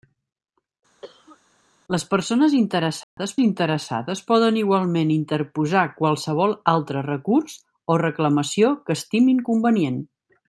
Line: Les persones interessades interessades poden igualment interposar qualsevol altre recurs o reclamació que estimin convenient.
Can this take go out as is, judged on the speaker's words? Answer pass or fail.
pass